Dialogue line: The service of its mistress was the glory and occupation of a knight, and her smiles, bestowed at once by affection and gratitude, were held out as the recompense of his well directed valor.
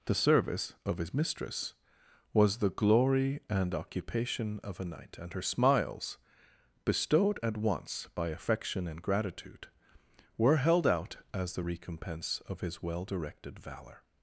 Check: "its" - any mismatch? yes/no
yes